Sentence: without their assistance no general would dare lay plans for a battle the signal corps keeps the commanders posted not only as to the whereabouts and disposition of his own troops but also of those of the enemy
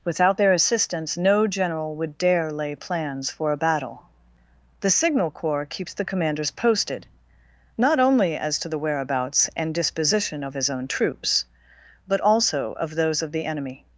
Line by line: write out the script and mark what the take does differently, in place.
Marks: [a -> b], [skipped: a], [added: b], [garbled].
without their assistance no general would dare lay plans for a battle the signal corps keeps the commanders posted not only as to the whereabouts and disposition of his own troops but also of those of the enemy